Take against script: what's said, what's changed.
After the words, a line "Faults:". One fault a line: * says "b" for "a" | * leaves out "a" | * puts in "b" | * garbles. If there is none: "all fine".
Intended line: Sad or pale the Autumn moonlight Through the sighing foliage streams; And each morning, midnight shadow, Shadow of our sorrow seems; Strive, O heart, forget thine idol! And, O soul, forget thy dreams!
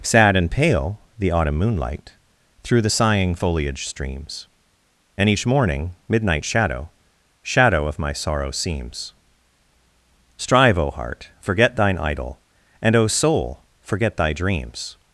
Sad and pale the Autumn moonlight Through the sighing foliage streams; And each morning, midnight shadow, Shadow of my sorrow seems; Strive, O heart, forget thine idol! And, O soul, forget thy dreams!
Faults:
* says "and" for "or"
* says "my" for "our"